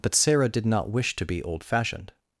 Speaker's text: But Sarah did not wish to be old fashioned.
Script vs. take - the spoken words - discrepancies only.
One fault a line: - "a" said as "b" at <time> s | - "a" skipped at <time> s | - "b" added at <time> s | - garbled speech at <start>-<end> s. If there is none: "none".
none